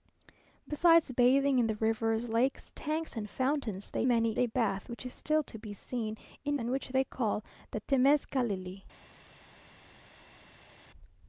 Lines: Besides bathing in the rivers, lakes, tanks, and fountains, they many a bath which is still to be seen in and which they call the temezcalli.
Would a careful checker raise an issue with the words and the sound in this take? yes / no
no